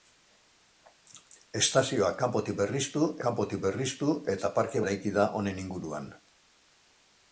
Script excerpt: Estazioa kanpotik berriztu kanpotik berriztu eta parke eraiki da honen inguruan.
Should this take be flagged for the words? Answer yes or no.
no